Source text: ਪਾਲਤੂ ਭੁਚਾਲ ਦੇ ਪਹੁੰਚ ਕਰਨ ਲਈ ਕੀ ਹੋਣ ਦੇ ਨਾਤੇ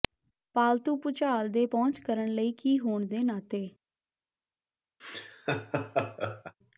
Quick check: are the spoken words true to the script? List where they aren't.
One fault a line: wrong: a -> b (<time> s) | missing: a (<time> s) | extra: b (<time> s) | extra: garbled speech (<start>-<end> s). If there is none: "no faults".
no faults